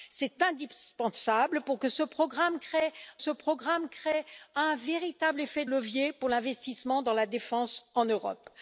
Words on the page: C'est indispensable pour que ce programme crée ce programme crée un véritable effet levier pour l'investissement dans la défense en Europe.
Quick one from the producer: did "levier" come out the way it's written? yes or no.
yes